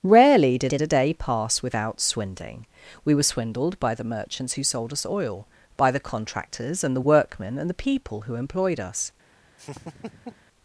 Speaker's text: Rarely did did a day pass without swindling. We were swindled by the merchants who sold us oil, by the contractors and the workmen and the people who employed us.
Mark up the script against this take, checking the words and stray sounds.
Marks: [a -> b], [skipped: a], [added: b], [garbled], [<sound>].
Rarely did did a day pass without swindling. We were swindled by the merchants who sold us oil, by the contractors and the workmen and the people who employed us. [laugh]